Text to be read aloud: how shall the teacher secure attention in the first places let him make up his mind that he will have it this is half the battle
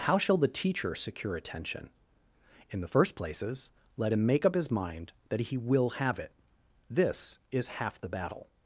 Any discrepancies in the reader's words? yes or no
no